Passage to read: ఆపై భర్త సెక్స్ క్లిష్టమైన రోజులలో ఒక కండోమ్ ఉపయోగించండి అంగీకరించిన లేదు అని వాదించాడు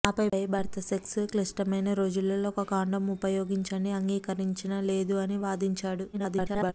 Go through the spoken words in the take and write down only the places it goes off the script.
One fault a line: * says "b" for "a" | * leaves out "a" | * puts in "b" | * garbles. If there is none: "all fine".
* garbles